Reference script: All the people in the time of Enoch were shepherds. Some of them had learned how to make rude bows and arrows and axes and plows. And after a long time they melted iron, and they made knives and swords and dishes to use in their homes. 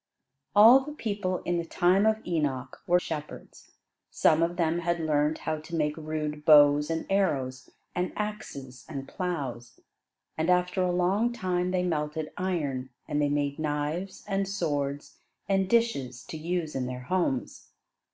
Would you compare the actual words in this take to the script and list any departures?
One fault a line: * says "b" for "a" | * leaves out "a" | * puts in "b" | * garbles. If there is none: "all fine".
all fine